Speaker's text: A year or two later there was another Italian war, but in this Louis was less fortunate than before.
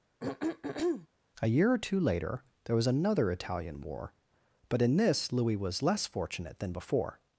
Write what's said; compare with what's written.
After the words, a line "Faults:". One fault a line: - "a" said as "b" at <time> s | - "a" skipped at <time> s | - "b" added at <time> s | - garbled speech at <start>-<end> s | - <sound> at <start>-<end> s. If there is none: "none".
A year or two later there was another Italian war, but in this Louis was less fortunate than before.
Faults:
- throat clearing at 0.2-1.1 s